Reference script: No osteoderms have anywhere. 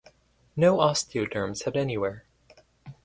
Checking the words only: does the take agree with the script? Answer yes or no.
yes